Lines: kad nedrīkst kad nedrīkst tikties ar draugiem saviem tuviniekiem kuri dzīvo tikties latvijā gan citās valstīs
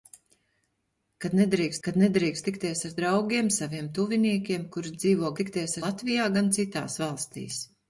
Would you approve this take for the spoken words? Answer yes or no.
yes